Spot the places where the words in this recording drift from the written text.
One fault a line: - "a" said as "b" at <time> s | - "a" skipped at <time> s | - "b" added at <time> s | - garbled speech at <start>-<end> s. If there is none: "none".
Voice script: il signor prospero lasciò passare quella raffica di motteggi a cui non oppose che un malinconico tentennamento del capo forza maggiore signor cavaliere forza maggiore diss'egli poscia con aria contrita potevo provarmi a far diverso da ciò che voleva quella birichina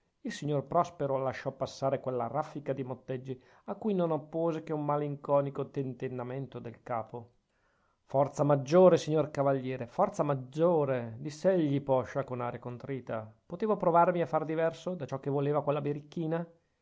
none